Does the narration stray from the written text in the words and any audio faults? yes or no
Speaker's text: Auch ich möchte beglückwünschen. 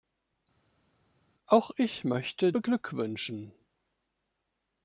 no